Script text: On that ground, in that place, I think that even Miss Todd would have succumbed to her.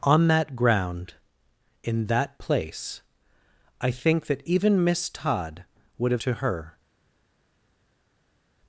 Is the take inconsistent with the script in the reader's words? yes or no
yes